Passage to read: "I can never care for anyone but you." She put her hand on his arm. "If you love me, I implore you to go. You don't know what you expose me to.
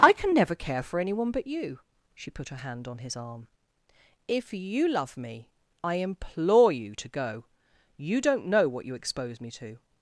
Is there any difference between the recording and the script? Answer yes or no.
no